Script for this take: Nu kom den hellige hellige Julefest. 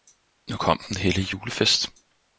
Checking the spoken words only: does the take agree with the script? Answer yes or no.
no